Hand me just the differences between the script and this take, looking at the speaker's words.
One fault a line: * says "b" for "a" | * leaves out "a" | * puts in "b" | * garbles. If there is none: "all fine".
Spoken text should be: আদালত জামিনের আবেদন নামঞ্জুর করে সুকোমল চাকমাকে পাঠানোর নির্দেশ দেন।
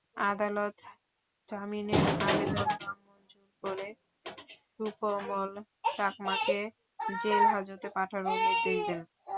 * puts in "জেলহাজতে"